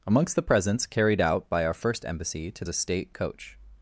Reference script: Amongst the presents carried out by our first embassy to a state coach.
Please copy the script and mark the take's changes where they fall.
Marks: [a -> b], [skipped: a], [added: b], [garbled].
Amongst the presents carried out by our first embassy to a state coach.